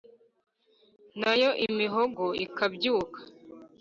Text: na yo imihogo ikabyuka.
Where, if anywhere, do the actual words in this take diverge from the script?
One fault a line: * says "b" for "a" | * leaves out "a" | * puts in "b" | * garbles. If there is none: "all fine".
all fine